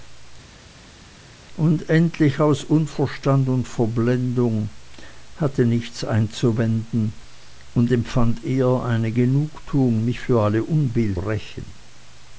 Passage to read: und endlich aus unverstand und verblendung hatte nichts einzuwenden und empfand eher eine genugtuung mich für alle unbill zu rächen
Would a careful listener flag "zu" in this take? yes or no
yes